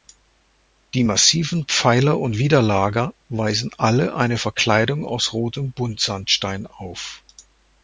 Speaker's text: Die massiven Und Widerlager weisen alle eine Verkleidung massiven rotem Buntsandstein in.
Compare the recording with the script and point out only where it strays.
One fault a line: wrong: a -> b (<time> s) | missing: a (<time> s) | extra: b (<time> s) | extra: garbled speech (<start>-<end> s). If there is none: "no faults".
extra: Pfeiler (1.7 s)
wrong: massiven -> aus (5.0 s)
wrong: in -> auf (6.7 s)